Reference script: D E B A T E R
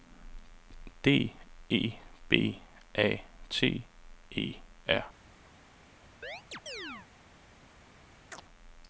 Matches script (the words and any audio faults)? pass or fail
fail